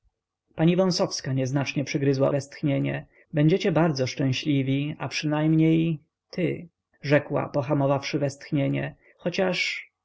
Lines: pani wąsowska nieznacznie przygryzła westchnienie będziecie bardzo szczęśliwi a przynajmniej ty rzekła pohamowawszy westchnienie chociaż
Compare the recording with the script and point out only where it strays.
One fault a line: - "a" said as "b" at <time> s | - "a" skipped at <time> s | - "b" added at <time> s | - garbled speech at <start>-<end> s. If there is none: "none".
none